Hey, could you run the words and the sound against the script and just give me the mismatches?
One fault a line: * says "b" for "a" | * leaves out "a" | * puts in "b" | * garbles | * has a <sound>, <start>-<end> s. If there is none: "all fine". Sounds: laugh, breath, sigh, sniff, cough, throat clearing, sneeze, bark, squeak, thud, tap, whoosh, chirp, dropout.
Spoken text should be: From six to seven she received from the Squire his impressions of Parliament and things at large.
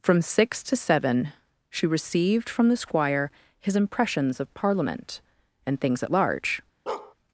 * has a bark, 6.9-7.1 s